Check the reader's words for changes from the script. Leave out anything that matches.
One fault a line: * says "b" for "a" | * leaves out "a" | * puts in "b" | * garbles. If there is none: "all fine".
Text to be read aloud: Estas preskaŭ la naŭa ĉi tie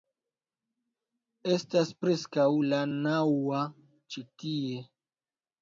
all fine